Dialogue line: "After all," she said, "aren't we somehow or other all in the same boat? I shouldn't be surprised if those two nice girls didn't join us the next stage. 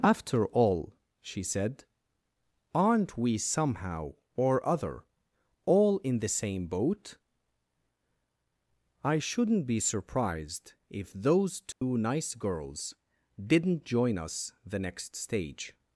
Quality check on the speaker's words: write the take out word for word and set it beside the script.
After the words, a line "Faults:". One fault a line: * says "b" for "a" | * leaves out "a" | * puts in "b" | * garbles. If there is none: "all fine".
"After all," she said, "aren't we somehow or other all in the same boat? I shouldn't be surprised if those two nice girls didn't join us the next stage.
Faults:
all fine